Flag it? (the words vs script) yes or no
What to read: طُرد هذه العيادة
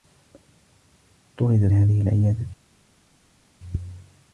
no